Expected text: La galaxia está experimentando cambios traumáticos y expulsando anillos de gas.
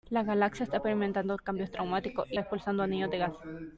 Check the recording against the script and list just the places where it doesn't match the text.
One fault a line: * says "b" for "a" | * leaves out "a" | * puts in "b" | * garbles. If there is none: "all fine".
all fine